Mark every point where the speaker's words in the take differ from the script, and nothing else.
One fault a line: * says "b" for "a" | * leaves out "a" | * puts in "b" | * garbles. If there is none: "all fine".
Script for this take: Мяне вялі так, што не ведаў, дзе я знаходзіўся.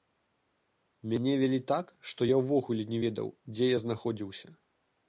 * puts in "я ўвогуле"